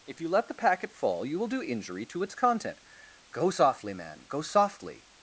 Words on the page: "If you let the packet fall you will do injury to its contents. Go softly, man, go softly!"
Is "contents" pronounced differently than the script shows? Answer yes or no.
yes